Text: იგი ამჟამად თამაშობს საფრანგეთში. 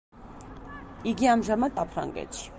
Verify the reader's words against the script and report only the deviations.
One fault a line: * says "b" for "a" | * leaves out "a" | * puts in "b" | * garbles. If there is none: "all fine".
* leaves out "თამაშობს"